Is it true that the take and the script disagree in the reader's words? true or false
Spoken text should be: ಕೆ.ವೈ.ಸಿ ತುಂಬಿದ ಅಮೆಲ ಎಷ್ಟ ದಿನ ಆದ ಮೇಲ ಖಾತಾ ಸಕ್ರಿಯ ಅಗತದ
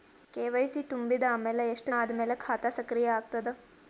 true